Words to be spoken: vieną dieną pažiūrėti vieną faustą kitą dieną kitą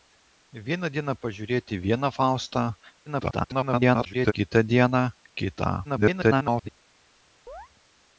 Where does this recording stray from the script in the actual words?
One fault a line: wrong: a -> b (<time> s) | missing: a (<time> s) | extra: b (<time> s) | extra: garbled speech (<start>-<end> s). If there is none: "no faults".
extra: garbled speech (3.1-4.3 s)
extra: garbled speech (5.8-6.7 s)